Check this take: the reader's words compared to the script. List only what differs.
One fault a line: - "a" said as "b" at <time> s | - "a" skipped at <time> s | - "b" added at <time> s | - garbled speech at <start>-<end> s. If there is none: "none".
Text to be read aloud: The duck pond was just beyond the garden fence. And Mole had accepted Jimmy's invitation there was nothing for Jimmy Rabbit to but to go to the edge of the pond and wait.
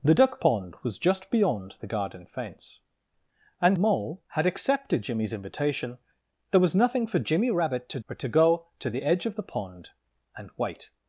none